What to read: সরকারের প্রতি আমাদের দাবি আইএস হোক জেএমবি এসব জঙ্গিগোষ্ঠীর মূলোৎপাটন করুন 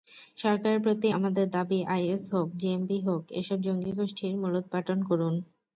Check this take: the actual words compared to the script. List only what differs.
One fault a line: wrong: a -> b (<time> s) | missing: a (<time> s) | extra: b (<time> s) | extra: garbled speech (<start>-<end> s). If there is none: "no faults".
extra: হোক (3.0 s)